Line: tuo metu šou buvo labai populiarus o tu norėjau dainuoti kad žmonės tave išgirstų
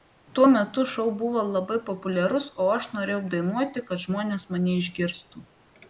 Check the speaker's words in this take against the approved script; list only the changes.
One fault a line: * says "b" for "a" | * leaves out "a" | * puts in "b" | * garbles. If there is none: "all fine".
* says "aš" for "tu"
* says "mane" for "tave"